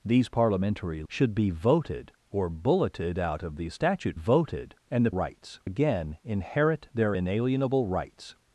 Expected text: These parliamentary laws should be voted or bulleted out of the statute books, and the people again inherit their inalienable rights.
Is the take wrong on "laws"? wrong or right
wrong